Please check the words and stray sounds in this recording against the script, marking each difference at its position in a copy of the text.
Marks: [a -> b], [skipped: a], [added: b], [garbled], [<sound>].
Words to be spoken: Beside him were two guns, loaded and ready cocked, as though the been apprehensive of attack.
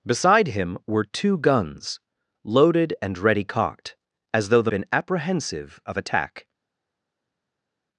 Beside him were two guns, loaded and ready cocked, as though the been apprehensive of attack.